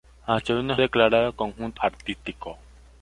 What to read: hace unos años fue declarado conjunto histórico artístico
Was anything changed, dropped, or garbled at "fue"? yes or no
yes